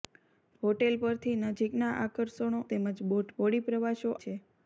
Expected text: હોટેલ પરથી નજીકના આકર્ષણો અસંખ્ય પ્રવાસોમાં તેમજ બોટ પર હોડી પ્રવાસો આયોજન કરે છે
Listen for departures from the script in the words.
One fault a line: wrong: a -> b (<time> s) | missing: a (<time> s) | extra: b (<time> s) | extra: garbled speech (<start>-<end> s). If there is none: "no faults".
missing: અસંખ્ય પ્રવાસોમાં (2.6 s)
missing: પર (3.3 s)
missing: આયોજન કરે (4.2 s)